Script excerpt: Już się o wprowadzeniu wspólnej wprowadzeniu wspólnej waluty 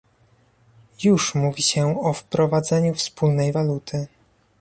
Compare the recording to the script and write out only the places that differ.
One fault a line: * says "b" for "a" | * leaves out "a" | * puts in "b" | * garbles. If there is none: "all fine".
* puts in "mówi"
* leaves out "wprowadzeniu wspólnej"